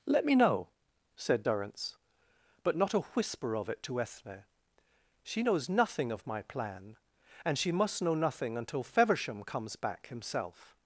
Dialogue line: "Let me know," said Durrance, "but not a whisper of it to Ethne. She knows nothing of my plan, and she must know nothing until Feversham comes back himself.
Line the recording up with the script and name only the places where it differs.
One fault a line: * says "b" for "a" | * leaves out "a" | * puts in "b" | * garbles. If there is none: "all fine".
all fine